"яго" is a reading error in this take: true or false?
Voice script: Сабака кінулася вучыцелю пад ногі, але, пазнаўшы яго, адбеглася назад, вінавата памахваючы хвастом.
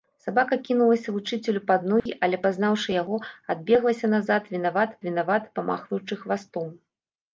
false